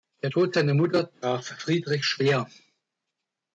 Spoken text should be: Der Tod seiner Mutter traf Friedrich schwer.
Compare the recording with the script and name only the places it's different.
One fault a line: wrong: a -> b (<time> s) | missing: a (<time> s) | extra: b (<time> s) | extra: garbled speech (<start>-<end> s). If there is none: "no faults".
no faults